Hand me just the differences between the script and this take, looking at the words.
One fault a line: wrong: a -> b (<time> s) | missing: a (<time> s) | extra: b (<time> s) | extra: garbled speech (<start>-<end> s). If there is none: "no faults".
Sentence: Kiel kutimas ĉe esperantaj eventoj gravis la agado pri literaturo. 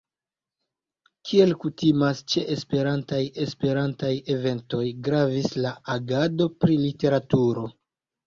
extra: esperantaj (3.5 s)